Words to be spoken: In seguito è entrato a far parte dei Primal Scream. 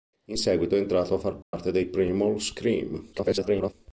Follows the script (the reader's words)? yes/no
no